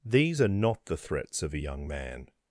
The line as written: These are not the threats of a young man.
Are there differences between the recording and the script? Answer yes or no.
no